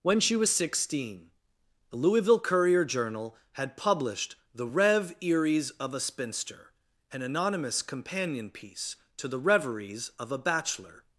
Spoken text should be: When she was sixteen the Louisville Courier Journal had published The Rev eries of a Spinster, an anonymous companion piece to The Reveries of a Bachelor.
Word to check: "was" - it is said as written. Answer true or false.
true